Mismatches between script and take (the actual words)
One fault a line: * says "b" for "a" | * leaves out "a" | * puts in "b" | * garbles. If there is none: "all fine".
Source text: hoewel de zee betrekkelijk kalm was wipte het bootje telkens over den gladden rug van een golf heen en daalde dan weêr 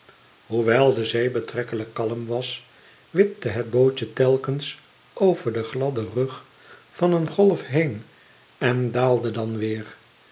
all fine